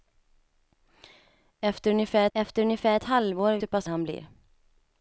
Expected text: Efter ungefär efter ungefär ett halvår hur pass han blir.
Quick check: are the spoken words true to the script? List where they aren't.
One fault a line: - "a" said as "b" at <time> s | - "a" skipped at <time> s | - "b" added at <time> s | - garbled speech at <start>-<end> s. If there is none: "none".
none